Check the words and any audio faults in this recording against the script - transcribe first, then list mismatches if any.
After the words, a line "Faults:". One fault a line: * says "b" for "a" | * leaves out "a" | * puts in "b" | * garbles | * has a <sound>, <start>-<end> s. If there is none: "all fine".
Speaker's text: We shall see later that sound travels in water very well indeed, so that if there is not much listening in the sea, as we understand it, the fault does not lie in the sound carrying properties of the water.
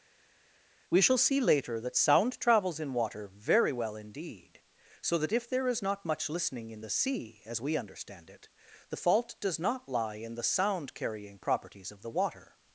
We shall see later that sound travels in water very well indeed, so that if there is not much listening in the sea, as we understand it, the fault does not lie in the sound carrying properties of the water.
Faults:
all fine